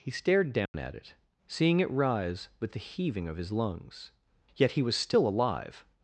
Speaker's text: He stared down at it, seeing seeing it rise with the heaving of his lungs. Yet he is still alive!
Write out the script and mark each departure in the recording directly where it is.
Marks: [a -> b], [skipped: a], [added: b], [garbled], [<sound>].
He stared down [dropout] at it, seeing [skipped: seeing] it rise with the heaving of his lungs. Yet he [is -> was] still alive!